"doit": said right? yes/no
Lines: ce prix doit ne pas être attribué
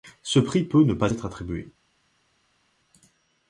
no